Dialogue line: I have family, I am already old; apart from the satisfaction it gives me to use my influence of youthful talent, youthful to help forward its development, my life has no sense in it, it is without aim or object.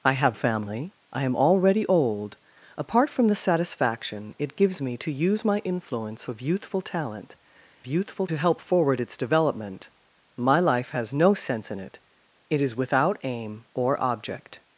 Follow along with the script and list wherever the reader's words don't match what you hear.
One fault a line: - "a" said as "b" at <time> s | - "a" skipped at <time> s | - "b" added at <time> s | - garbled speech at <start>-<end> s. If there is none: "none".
none